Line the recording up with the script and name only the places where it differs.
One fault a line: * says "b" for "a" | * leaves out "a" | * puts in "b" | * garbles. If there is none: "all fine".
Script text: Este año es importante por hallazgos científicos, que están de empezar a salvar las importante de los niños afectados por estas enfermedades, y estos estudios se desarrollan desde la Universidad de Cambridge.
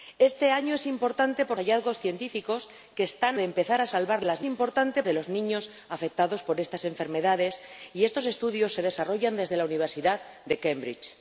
all fine